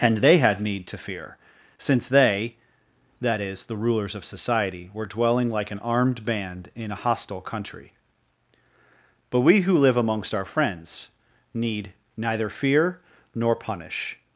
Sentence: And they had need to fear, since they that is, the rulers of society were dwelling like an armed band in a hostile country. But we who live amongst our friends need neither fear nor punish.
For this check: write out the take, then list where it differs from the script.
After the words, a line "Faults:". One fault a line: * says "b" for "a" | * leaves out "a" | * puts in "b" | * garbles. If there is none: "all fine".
And they had need to fear, since they that is, the rulers of society were dwelling like an armed band in a hostile country. But we who live amongst our friends need neither fear nor punish.
Faults:
all fine